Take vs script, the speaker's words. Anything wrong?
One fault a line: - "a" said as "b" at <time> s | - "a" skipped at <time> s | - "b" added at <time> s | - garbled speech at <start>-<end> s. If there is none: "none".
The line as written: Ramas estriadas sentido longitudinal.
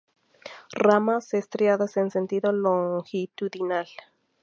- "en" added at 1.9 s